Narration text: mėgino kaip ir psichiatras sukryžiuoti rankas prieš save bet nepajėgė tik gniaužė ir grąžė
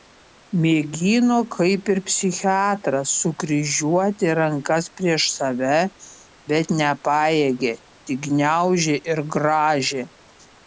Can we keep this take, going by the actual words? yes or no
yes